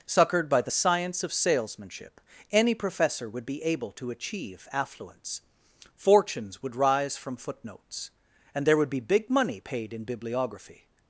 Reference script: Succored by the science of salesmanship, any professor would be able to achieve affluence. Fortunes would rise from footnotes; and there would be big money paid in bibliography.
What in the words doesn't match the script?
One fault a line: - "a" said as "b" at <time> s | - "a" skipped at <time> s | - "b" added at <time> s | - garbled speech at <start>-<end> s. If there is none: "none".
none